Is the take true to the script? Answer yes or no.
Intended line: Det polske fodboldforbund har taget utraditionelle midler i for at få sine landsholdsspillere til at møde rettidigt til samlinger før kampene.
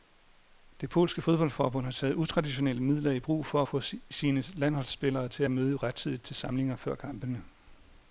no